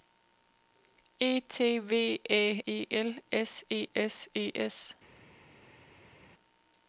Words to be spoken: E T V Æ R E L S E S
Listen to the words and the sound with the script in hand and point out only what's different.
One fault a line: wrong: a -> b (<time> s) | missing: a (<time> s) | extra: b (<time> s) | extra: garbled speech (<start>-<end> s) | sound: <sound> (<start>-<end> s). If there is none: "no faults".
missing: R (2.6 s)
extra: E S (4.3 s)